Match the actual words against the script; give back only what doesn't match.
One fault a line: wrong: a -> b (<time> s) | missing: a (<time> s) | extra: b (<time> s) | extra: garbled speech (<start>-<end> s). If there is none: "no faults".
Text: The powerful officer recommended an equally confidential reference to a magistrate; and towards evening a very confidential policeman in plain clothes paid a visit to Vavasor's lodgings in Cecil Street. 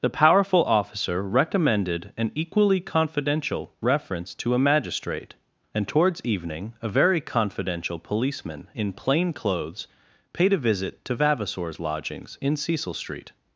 no faults